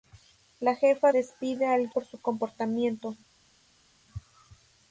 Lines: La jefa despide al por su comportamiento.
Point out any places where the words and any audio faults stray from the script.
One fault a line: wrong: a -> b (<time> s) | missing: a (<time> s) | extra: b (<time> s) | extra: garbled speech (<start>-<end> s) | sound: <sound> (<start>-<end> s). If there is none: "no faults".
no faults